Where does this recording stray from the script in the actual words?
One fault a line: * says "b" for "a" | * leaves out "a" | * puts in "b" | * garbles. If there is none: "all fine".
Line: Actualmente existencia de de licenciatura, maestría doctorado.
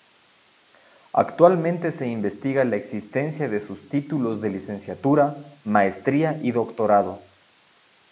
* puts in "se investiga la"
* puts in "sus títulos"
* puts in "y"